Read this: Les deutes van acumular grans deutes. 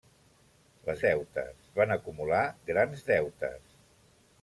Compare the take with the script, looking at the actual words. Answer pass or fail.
pass